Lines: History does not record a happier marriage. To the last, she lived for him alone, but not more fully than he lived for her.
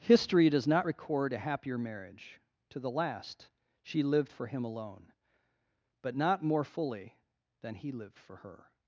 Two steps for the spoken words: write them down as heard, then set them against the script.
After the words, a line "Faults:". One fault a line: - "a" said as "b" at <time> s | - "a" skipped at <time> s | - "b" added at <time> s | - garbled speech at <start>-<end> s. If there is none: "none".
History does not record a happier marriage. To the last, she lived for him alone, but not more fully than he lived for her.
Faults:
none